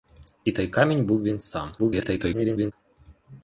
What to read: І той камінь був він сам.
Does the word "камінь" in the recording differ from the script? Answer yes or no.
no